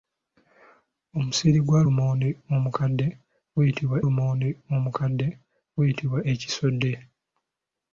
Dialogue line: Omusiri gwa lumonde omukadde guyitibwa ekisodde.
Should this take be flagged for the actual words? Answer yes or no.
yes